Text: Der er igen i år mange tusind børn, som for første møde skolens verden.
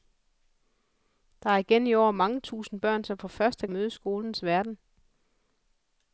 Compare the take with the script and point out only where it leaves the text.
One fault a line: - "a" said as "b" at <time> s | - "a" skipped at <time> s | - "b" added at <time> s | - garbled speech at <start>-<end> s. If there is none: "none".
none